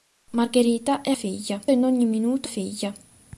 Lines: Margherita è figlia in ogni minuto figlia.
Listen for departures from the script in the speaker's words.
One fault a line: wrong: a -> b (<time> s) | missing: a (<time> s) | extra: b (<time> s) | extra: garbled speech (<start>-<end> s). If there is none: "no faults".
no faults